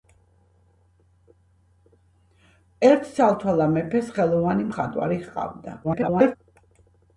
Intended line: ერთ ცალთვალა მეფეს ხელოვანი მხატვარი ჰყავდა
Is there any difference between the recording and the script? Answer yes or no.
yes